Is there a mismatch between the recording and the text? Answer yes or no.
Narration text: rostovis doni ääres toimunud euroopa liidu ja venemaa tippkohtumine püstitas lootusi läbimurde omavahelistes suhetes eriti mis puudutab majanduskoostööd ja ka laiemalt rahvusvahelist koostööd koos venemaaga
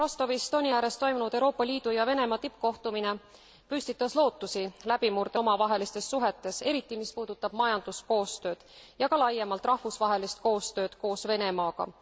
no